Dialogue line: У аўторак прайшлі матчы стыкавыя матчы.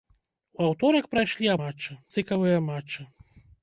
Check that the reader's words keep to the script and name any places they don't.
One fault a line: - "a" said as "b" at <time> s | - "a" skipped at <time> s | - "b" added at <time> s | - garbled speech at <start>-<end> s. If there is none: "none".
none